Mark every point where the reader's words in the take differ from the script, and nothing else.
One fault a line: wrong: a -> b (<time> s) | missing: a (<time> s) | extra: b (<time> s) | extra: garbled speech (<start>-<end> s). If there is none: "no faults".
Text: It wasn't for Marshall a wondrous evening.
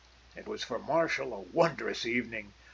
wrong: wasn't -> was (0.5 s)